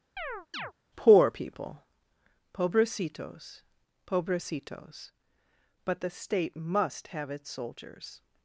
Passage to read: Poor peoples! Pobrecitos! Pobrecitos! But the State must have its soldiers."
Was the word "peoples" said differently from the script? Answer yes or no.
yes